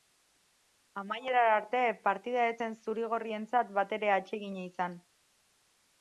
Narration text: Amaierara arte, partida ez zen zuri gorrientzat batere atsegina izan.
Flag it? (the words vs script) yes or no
no